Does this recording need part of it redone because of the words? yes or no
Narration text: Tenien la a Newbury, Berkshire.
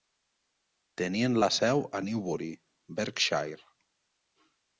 yes